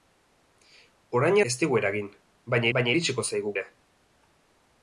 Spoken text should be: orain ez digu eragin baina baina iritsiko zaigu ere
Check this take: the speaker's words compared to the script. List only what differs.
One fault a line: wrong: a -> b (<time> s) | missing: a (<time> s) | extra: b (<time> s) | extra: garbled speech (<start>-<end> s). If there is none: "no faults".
no faults